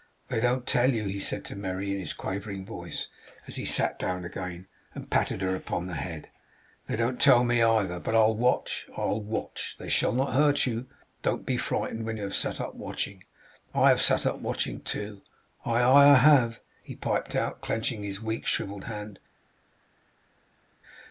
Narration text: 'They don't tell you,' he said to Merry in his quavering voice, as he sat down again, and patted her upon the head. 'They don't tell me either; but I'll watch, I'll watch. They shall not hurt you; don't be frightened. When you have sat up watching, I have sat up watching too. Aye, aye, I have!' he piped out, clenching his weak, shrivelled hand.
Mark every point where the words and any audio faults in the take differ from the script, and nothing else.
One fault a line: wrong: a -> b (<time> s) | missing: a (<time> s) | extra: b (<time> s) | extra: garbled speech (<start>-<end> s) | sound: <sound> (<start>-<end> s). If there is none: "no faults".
no faults